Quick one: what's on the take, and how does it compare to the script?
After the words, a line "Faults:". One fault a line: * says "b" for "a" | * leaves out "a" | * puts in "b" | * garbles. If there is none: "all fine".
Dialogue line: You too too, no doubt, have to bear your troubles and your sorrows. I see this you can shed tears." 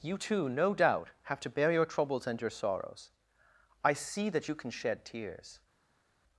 You too, no doubt, have to bear your troubles and your sorrows. I see that you can shed tears."
Faults:
* leaves out "too"
* says "that" for "this"